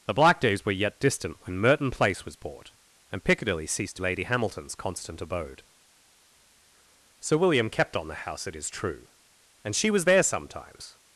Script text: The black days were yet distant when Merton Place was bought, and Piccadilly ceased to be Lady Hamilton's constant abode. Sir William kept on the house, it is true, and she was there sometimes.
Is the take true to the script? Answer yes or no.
no